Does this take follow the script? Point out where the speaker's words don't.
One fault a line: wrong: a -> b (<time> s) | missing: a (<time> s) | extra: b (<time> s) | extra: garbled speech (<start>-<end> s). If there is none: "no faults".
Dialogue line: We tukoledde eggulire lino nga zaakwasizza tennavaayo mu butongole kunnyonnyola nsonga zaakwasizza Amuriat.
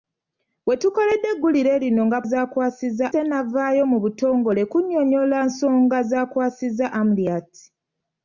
no faults